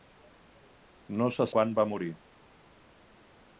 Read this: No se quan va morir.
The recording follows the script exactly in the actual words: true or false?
true